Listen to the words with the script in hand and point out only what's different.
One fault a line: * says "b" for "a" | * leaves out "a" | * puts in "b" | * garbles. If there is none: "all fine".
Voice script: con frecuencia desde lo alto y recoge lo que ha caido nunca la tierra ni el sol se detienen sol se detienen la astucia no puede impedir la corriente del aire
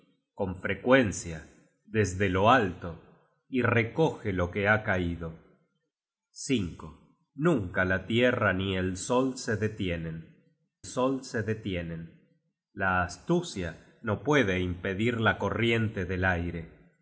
all fine